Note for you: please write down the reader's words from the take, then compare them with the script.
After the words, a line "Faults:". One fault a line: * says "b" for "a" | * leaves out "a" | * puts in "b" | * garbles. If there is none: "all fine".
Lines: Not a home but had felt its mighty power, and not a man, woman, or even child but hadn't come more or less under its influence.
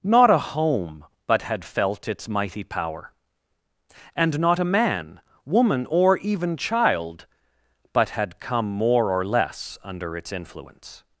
Not a home but had felt its mighty power, and not a man, woman, or even child but had come more or less under its influence.
Faults:
* says "had" for "hadn't"